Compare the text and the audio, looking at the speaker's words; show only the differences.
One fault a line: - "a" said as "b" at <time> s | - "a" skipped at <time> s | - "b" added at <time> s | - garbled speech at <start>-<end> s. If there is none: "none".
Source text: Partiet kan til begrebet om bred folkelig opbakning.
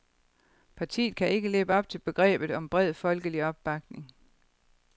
- "ikke leve op" added at 1.3 s